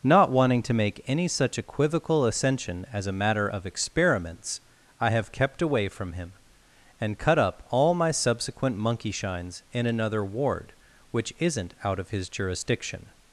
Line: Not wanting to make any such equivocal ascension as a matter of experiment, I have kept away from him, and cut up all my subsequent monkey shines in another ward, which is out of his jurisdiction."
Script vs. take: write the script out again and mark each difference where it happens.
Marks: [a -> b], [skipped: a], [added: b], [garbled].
Not wanting to make any such equivocal ascension as a matter of [experiment, -> experiments] I have kept away from him, and cut up all my subsequent monkey shines in another ward, which [is -> isn't] out of his jurisdiction."